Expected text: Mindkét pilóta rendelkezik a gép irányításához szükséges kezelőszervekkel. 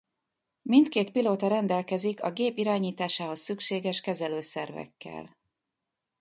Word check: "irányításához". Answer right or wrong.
right